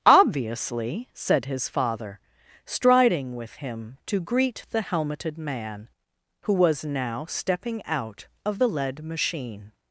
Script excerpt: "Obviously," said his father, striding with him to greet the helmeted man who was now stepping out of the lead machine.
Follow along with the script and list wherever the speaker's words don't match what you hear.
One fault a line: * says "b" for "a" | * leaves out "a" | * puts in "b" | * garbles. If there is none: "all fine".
all fine